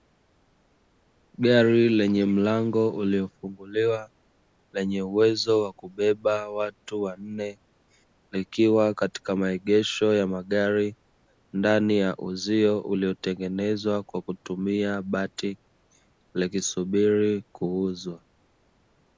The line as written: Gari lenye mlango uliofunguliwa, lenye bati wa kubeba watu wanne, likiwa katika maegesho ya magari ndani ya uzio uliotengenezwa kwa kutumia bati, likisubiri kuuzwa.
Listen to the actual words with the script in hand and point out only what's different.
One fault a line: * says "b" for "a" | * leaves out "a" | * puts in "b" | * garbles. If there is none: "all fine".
* says "uwezo" for "bati"